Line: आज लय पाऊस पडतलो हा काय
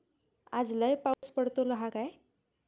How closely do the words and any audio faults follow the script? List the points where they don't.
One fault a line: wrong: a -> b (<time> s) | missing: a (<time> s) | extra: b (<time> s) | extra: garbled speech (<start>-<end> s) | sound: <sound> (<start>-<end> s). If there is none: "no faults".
sound: dropout (1.1-1.2 s)